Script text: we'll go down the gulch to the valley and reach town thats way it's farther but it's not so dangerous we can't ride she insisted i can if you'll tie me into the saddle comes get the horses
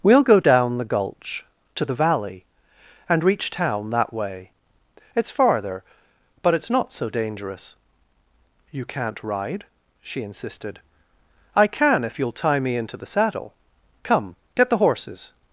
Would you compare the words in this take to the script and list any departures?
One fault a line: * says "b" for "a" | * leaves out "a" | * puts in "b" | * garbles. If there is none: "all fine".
* says "that" for "thats"
* says "you" for "we"
* says "come" for "comes"